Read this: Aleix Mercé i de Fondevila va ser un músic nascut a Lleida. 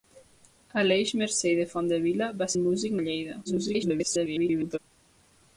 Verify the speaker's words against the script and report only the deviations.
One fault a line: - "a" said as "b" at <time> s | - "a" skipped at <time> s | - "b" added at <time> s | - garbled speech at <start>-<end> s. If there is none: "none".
- "ser" skipped at 2.5 s
- "nascut" skipped at 3.0 s
- garbled speech at 3.4-4.8 s